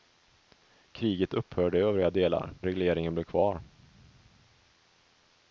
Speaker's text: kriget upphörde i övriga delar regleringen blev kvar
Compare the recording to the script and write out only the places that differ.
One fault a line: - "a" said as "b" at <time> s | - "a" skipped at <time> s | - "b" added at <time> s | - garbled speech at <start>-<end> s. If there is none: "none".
none